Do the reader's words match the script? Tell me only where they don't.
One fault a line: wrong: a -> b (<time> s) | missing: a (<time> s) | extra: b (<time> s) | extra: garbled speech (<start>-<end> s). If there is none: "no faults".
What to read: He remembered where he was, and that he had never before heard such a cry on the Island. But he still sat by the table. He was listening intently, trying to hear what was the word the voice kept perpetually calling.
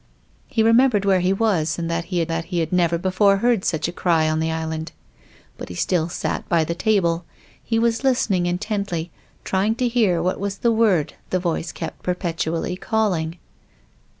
extra: that he had (2.3 s)